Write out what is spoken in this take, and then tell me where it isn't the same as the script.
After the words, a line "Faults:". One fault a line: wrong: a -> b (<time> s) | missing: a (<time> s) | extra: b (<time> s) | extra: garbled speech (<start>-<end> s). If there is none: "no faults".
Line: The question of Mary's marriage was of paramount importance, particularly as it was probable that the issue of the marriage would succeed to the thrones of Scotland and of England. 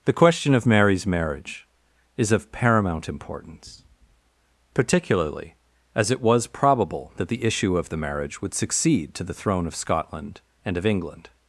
The question of Mary's marriage is of paramount importance, particularly as it was probable that the issue of the marriage would succeed to the throne of Scotland and of England.
Faults:
wrong: was -> is (2.2 s)
wrong: thrones -> throne (9.3 s)